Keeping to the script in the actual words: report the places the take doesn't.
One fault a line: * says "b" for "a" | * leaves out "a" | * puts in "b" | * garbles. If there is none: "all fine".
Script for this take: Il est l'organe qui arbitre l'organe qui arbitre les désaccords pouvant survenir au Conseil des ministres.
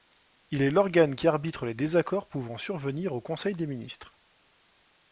* leaves out "l'organe qui arbitre"